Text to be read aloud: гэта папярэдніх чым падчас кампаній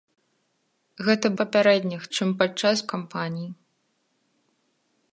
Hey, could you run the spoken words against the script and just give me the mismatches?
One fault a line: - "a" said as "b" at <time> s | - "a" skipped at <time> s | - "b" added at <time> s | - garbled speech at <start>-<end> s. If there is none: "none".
none